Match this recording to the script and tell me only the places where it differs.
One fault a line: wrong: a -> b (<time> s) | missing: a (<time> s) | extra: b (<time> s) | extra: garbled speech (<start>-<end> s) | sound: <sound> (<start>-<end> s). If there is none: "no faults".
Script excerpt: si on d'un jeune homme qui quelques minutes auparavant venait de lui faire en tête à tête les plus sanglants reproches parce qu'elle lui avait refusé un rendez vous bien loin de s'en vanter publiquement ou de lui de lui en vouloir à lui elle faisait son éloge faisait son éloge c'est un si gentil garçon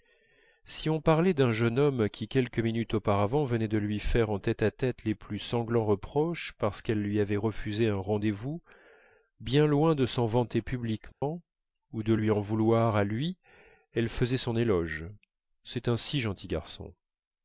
extra: parlait (1.0 s)
sound: dropout (11.1-11.2 s)
missing: de lui (12.3 s)
missing: faisait son éloge (15.0 s)